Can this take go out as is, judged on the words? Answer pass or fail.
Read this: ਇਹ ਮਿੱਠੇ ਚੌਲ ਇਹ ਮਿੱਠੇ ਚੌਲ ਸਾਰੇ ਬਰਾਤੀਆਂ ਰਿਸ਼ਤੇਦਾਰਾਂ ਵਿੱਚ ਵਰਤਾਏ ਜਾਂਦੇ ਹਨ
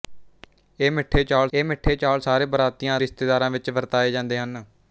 pass